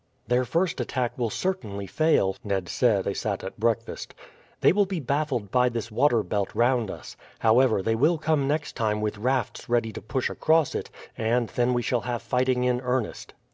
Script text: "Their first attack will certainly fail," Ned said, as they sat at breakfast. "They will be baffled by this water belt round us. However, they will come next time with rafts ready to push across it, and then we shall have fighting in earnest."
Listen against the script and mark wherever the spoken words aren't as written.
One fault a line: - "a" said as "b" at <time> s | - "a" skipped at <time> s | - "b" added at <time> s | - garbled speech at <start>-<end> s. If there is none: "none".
- "as" skipped at 3.1 s